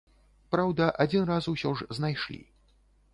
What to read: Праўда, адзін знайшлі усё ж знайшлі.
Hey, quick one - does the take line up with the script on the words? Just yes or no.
no